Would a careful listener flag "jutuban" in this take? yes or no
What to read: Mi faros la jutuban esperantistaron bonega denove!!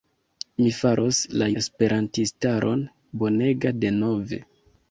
yes